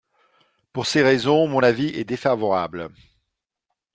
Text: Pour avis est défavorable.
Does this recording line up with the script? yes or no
no